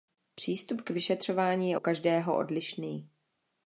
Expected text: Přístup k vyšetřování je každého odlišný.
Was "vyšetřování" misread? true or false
false